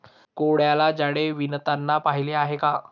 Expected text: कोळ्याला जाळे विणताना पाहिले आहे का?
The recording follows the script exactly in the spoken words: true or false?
true